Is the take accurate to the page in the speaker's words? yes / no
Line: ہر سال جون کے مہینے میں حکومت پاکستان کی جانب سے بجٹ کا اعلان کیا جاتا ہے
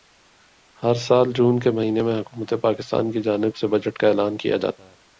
yes